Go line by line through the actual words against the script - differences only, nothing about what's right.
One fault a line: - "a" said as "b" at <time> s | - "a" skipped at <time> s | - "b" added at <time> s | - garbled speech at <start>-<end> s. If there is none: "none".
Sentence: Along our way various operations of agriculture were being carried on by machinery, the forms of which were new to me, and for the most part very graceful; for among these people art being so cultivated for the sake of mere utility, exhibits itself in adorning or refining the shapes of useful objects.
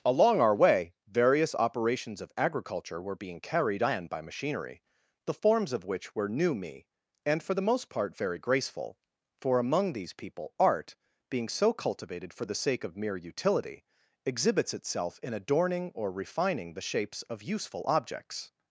- "to" skipped at 6.5 s